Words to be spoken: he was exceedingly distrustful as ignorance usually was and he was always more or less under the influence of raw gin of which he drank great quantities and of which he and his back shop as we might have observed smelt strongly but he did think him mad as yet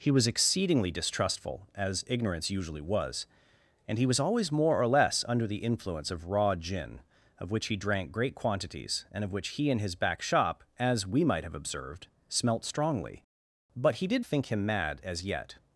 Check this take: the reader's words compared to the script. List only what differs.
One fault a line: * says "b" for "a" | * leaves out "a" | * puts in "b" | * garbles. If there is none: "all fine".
all fine